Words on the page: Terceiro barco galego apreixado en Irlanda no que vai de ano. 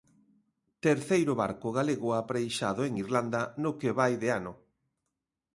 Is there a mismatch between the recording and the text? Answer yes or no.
no